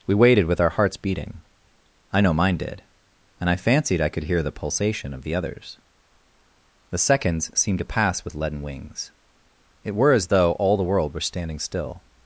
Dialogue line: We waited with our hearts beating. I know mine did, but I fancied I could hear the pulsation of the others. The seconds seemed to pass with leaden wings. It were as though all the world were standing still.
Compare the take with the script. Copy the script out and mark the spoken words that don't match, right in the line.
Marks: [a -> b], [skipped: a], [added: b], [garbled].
We waited with our hearts beating. I know mine did, [but -> and] I fancied I could hear the pulsation of the others. The seconds seemed to pass with leaden wings. It were as though all the world were standing still.